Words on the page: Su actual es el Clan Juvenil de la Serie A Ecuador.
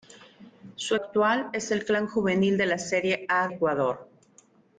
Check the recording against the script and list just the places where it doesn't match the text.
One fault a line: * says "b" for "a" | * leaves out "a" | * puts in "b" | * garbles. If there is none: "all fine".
all fine